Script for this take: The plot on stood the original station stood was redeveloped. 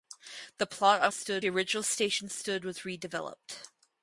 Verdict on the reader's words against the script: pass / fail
pass